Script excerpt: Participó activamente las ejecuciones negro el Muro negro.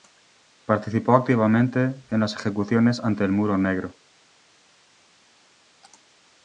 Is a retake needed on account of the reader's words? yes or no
yes